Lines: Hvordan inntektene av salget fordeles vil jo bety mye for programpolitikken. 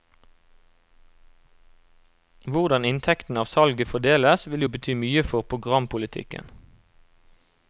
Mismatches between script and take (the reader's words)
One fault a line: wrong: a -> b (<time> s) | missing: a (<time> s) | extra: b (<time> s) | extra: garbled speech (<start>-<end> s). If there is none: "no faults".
no faults